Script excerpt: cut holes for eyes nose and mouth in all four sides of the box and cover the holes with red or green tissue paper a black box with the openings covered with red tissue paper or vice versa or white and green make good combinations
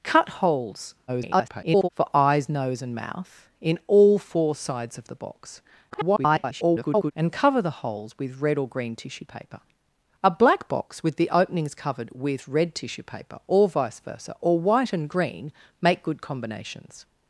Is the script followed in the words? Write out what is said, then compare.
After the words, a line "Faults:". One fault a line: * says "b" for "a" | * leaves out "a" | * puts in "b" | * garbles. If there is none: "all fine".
cut holes [garbled] for eyes nose and mouth in all four sides of the box [garbled] and cover the holes with red or green tissue paper a black box with the openings covered with red tissue paper or vice versa or white and green make good combinations
Faults:
* garbles
* garbles